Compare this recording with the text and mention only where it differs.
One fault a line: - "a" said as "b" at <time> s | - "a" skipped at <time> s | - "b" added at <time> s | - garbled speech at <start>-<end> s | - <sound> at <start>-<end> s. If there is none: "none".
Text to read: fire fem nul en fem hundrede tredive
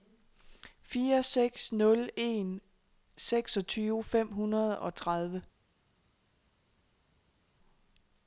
- "fem" said as "seks" at 1.2 s
- "seksogtyve" added at 3.2 s
- "og" added at 4.8 s